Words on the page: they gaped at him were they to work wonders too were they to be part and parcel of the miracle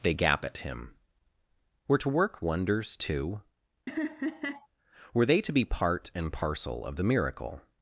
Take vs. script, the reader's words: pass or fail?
fail